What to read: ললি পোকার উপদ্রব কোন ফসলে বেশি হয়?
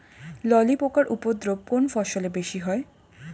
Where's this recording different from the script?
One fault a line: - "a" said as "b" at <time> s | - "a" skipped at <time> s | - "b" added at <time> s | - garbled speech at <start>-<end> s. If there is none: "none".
none